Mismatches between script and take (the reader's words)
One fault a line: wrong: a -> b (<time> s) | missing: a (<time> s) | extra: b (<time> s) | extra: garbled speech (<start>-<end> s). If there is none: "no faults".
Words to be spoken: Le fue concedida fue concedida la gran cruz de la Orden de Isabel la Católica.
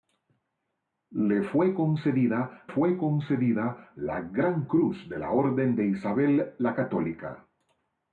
no faults